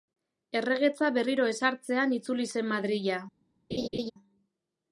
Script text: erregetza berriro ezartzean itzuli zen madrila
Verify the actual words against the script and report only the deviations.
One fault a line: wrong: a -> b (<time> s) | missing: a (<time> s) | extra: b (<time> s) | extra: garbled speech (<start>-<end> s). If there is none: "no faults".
no faults